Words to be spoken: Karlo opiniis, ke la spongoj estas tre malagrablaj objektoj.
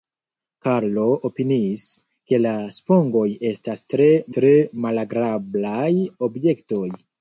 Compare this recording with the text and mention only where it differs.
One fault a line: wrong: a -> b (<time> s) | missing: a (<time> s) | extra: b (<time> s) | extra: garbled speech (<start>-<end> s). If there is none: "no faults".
extra: tre (4.4 s)